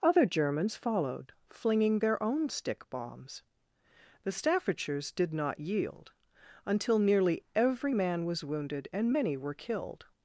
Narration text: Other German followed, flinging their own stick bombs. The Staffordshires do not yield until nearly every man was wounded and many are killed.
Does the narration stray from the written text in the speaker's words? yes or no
yes